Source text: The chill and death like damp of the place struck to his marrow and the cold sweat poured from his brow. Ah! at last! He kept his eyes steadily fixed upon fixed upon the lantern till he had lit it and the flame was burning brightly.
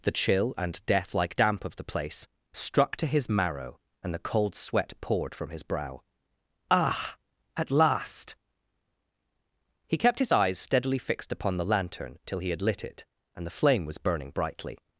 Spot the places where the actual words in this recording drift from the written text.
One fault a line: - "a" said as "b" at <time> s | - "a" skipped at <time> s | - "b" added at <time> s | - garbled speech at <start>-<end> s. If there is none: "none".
- "fixed upon" skipped at 11.6 s